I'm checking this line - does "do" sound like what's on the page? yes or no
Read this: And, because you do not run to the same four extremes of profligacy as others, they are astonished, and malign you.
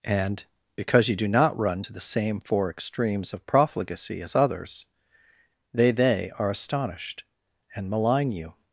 yes